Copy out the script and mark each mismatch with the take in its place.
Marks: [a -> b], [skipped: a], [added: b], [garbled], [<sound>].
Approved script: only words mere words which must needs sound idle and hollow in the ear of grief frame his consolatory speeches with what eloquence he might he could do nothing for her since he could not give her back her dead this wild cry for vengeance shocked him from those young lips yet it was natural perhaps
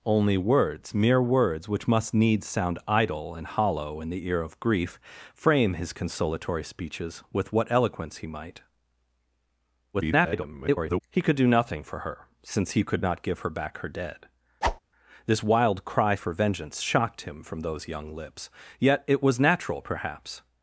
only words mere words which must needs sound idle and hollow in the ear of grief frame his consolatory speeches with what eloquence he might [garbled] he could do nothing for her since he could not give her back her dead [whoosh] this wild cry for vengeance shocked him from those young lips yet it was natural perhaps